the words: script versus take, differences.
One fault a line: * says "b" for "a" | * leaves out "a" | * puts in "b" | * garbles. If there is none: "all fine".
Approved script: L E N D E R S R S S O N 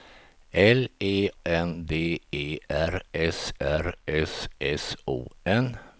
all fine